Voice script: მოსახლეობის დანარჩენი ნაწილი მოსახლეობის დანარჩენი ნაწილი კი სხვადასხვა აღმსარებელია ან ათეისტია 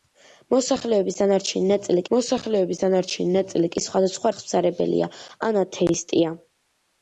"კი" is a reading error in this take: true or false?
false